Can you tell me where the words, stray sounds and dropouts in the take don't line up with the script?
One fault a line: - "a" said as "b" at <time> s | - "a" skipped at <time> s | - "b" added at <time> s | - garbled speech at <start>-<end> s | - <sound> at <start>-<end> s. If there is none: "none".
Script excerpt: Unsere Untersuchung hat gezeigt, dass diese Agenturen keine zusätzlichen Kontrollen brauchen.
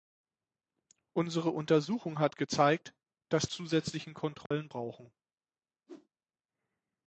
- "diese Agenturen keine" skipped at 3.5 s
- dropout at 4.5-4.5 s
- whoosh at 5.9-6.1 s